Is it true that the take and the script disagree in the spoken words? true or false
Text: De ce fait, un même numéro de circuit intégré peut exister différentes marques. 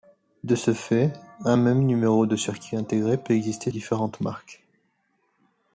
false